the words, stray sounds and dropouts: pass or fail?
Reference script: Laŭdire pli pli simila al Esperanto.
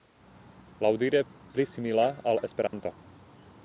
fail